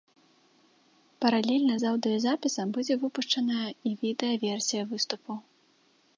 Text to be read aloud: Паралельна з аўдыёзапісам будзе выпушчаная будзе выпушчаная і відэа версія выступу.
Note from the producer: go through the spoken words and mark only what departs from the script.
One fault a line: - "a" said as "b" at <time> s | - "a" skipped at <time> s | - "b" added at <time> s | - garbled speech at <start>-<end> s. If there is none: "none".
- "будзе выпушчаная" skipped at 3.7 s